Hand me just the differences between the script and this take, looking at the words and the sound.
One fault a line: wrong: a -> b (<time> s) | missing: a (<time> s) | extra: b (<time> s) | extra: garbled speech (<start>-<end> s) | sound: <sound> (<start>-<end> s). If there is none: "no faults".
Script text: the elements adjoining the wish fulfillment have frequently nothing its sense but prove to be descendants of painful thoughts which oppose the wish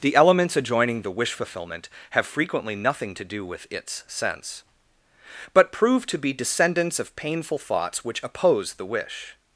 extra: to do with (3.1 s)